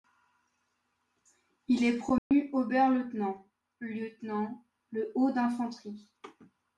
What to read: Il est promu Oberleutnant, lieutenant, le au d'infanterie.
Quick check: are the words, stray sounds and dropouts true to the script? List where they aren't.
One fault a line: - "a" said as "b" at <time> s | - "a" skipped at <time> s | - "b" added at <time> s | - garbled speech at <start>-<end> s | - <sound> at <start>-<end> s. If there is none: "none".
- dropout at 2.2-2.3 s